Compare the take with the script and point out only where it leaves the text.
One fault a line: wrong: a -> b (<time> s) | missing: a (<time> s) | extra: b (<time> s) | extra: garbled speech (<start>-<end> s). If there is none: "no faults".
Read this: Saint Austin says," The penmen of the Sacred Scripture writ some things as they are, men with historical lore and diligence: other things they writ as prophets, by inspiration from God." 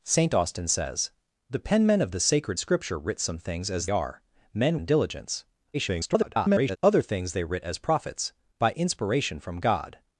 missing: they (3.9 s)
missing: with historical lore (4.8 s)
extra: garbled speech (5.7-6.8 s)